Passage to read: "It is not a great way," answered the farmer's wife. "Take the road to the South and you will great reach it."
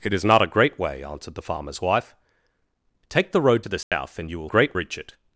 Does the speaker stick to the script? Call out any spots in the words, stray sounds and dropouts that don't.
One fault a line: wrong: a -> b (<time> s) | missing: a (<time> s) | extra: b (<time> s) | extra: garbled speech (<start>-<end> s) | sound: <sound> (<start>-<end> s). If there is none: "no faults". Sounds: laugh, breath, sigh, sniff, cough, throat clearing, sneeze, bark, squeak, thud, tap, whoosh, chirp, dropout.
sound: dropout (3.8-3.9 s)